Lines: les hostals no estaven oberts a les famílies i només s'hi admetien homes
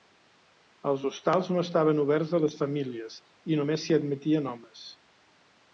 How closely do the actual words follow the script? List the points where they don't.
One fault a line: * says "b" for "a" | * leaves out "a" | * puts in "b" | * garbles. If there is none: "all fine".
* says "els" for "les"